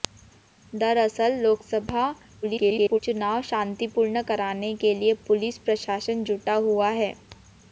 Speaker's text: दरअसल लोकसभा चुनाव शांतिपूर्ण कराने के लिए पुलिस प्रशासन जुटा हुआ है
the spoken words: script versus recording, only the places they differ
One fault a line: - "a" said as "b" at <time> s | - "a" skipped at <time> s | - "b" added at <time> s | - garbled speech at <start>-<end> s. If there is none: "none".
- garbled speech at 2.4-3.0 s